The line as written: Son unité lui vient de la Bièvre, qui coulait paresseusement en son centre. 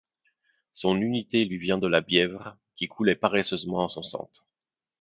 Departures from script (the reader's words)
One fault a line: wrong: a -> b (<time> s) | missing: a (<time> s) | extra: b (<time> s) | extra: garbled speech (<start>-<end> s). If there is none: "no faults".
no faults